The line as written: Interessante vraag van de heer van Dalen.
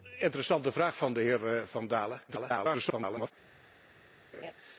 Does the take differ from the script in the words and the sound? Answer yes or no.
yes